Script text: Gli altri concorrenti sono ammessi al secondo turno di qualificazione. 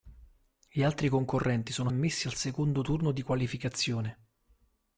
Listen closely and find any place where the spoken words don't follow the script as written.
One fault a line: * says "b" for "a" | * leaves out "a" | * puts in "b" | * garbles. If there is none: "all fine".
all fine